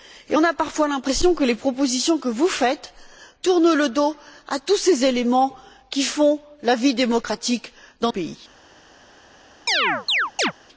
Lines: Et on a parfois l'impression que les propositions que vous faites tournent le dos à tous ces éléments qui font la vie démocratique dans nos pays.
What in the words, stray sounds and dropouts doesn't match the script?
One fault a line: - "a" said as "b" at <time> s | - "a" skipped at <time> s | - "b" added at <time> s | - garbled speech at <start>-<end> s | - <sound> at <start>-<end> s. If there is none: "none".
- "nos" skipped at 8.1 s
- chirp at 9.7-10.5 s